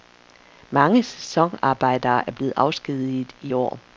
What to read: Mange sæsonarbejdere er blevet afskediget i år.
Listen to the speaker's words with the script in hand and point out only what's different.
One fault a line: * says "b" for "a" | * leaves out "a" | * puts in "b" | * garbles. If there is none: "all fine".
all fine